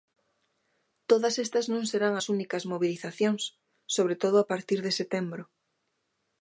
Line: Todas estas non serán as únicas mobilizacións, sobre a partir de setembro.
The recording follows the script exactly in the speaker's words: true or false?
false